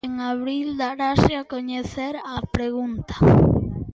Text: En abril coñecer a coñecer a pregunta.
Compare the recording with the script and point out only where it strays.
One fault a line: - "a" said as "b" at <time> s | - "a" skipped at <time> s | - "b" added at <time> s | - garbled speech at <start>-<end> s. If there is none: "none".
- "coñecer" said as "darase" at 0.8 s